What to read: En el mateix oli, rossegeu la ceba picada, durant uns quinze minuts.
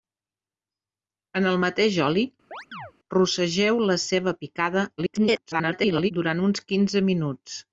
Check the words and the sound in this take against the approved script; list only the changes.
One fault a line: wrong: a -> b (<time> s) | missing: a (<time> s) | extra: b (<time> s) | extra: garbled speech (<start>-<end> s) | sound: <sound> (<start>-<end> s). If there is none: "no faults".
sound: chirp (2.5-2.9 s)
extra: garbled speech (5.0-6.1 s)